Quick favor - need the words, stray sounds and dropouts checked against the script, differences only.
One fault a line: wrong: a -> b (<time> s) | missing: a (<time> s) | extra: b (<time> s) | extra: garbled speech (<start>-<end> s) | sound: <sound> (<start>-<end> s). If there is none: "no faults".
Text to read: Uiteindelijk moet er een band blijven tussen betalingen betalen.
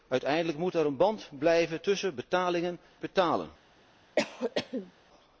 sound: cough (4.2-4.9 s)